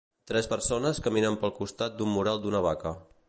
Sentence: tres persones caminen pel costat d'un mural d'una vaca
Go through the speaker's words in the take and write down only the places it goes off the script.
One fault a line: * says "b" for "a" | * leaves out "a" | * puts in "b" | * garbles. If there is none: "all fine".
all fine